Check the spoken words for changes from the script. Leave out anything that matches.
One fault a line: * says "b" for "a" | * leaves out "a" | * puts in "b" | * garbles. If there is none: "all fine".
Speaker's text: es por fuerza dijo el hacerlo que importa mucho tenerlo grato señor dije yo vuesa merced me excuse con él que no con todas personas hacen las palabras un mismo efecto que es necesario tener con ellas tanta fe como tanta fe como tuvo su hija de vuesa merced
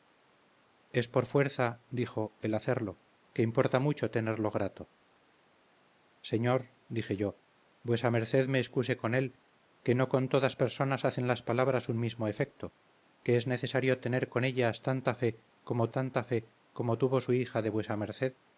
all fine